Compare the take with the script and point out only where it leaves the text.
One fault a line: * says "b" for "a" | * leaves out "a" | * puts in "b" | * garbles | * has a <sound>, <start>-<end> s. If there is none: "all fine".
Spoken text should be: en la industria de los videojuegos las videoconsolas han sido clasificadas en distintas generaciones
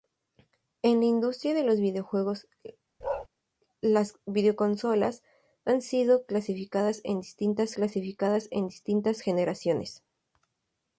* has a bark, 3.0-3.3 s
* puts in "clasificadas en distintas"